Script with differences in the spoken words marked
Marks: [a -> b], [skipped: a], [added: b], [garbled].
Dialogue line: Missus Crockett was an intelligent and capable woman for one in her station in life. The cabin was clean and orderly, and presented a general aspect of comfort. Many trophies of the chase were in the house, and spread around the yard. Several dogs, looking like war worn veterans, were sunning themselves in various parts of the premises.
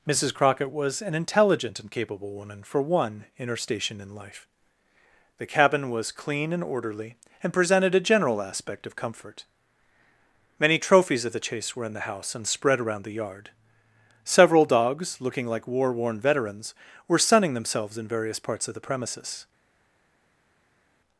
Missus Crockett was an intelligent and capable woman for one in her station in life. The cabin was clean and orderly, and presented a general aspect of comfort. Many trophies of the chase were in the house, and spread around the yard. Several dogs, looking like war worn veterans, were sunning themselves in various parts of the premises.